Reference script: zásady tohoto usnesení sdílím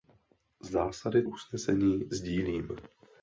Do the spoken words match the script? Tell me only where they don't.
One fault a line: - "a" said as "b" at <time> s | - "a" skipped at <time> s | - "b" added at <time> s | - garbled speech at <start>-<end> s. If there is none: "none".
- "tohoto" skipped at 1.2 s